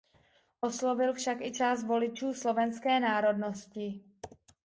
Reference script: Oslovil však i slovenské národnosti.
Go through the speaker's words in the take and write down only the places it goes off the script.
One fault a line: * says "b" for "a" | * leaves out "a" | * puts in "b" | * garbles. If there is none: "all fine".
* puts in "část voličů"